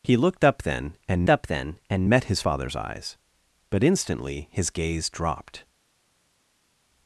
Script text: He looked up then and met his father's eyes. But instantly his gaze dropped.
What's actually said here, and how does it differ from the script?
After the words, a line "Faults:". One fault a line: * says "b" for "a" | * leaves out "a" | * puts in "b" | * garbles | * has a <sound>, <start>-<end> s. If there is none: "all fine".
He looked up then and up then and met his father's eyes. But instantly his gaze dropped.
Faults:
* puts in "up then and"